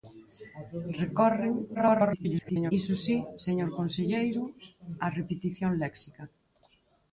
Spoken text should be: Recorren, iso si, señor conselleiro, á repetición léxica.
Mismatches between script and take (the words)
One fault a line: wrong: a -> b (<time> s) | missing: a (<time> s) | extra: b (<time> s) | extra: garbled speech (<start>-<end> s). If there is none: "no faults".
extra: garbled speech (1.7-2.7 s)